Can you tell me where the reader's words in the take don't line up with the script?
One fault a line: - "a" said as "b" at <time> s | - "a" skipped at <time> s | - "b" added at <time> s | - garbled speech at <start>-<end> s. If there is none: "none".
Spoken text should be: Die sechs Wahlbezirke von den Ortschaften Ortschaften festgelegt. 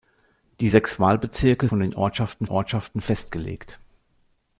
none